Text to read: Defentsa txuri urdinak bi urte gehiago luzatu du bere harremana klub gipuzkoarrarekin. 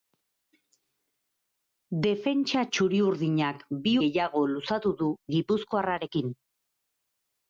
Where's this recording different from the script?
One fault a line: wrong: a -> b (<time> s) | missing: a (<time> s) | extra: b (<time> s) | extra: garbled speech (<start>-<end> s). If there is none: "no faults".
missing: urte (3.9 s)
missing: bere harremana klub (5.1 s)